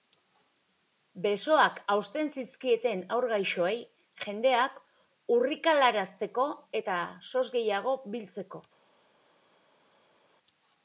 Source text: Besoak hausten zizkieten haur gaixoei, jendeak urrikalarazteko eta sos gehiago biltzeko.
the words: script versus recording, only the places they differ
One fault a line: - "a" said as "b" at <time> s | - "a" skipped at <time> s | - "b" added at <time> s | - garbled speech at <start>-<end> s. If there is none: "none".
none